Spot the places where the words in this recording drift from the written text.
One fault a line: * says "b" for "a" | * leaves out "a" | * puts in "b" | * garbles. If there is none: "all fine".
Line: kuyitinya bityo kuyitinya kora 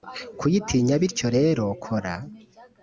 * says "rero" for "kuyitinya"